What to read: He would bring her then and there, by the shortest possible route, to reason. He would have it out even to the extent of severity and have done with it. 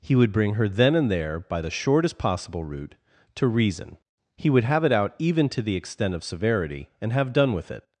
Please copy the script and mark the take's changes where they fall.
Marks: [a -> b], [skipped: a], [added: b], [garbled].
He would bring her then and there, by the shortest possible route, to reason. He would have it out even to the extent of severity and have done with it.